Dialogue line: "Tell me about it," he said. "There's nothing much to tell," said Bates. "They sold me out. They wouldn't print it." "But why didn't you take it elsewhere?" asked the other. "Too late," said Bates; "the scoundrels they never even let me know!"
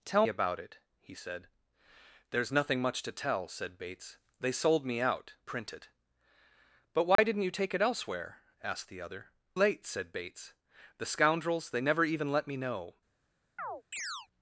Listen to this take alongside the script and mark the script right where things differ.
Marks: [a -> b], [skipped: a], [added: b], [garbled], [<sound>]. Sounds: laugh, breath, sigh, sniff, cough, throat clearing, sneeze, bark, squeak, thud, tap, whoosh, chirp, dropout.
"Tell [skipped: me] about it," he said. "There's nothing much to tell," said Bates. "They sold me out. [skipped: They wouldn't] print it." "But why [dropout] didn't you take it elsewhere?" asked the other. [skipped: "Too] late," said Bates; "the scoundrels they never even let me know!" [chirp]